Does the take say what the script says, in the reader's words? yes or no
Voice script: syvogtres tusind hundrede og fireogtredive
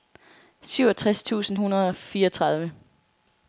yes